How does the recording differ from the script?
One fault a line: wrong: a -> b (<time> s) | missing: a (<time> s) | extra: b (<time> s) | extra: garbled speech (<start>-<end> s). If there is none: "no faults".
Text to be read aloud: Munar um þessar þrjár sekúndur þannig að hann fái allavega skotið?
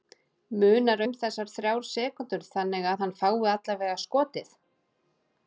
no faults